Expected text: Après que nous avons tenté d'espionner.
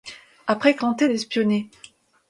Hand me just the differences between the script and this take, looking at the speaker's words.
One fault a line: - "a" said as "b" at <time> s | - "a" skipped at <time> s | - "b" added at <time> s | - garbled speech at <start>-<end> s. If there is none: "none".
- "nous avons" skipped at 0.8 s